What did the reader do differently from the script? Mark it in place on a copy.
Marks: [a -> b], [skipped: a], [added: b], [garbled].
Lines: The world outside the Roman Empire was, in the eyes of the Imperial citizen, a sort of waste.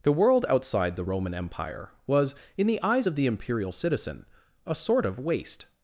The world outside the Roman Empire was, in the eyes of the Imperial citizen, a sort of waste.